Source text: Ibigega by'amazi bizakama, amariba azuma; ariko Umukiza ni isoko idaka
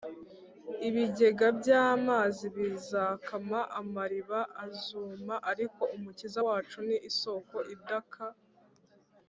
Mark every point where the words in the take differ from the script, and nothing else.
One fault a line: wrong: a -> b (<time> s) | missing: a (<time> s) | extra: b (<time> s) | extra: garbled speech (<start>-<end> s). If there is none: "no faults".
extra: wacu (6.4 s)